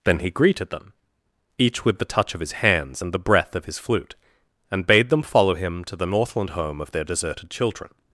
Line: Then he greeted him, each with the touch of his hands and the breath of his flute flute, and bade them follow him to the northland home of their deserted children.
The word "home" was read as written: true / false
true